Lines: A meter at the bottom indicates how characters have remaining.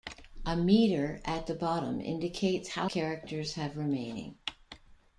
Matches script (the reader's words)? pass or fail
pass